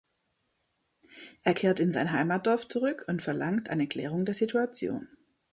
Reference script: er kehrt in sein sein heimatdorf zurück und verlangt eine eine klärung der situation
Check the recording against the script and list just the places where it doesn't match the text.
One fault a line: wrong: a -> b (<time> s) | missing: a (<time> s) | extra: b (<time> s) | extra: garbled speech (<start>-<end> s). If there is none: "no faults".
missing: sein (2.1 s)
missing: eine (3.9 s)